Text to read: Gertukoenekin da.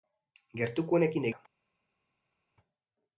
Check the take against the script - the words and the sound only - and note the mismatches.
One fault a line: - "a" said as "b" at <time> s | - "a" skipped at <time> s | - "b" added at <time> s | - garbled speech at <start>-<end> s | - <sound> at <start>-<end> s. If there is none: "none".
none